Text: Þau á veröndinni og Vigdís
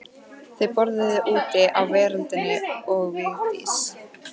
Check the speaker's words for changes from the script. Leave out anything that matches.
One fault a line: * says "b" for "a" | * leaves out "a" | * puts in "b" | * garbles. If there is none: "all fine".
* puts in "borðuðu úti"